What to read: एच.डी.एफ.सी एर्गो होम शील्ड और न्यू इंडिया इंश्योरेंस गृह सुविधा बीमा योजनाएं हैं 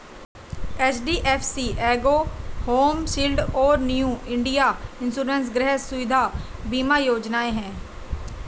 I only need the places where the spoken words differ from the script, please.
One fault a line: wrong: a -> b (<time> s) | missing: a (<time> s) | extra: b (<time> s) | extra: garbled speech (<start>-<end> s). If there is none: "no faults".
no faults